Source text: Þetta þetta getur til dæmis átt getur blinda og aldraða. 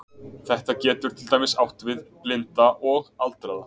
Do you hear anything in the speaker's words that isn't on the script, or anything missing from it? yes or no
yes